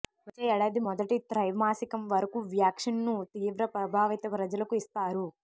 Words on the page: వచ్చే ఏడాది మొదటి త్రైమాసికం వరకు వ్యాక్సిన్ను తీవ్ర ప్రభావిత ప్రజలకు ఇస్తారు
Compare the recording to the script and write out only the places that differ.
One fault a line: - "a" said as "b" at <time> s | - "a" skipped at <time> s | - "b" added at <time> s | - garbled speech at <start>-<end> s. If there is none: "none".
none